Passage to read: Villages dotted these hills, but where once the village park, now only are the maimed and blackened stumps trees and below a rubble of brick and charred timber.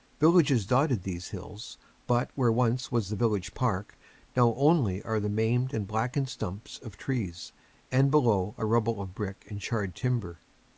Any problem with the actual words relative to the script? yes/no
yes